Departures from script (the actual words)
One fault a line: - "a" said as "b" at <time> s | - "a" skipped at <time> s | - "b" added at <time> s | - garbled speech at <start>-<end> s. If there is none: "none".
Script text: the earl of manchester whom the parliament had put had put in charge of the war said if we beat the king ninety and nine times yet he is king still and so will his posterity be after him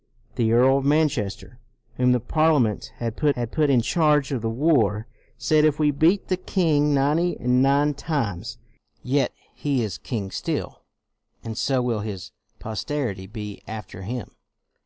none